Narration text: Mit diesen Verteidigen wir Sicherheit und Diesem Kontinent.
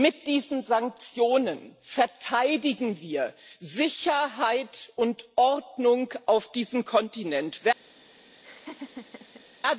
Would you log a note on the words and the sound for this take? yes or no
yes